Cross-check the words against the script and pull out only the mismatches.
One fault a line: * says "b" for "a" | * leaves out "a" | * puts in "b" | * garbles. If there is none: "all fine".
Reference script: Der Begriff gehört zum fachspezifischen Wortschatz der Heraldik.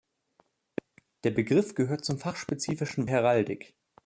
* leaves out "Wortschatz der"